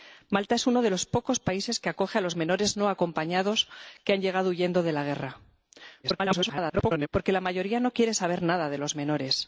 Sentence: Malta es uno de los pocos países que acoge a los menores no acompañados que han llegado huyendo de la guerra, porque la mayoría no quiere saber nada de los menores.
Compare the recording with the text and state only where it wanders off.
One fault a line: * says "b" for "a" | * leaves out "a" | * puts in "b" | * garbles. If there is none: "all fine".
* garbles